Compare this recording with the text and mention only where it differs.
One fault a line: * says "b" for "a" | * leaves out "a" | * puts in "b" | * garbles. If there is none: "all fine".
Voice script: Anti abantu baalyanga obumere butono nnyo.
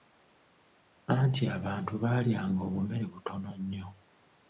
all fine